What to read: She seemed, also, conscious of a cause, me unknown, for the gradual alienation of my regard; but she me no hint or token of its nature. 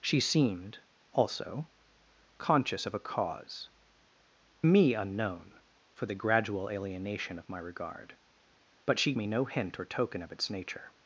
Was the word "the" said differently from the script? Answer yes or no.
no